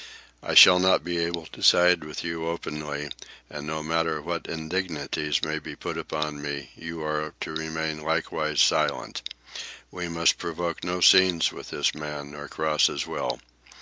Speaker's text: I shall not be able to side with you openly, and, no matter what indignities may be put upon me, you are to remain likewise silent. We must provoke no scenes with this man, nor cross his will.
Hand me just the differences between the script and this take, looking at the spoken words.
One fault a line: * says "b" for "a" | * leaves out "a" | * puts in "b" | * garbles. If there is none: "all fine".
all fine